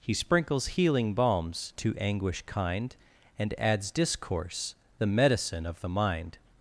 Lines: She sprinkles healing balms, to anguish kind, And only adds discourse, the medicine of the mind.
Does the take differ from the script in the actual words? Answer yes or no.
yes